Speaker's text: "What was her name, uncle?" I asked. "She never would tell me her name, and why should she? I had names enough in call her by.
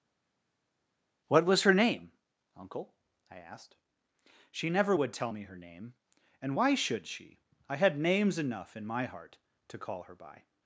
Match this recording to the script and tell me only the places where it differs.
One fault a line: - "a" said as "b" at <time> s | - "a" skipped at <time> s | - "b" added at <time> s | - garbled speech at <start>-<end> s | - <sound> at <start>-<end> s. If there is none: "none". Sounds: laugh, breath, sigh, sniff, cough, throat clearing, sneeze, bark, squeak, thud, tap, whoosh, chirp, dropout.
- "my heart to" added at 8.8 s